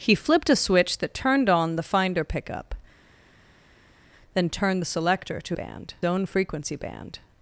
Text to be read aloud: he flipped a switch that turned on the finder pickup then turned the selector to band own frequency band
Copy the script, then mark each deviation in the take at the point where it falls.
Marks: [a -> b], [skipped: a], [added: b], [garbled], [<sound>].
he flipped a switch that turned on the finder pickup then turned the selector to band own frequency band